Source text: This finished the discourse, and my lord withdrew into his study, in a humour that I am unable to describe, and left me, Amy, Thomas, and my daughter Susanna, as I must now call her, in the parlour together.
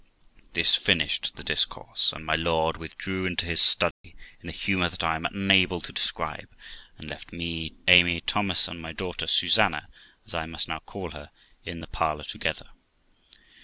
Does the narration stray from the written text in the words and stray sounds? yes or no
yes